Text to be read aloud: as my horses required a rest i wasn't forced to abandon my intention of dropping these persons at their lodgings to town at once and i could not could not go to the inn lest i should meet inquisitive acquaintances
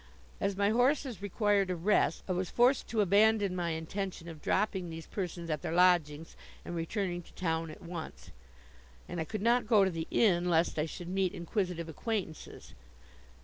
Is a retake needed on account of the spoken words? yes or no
yes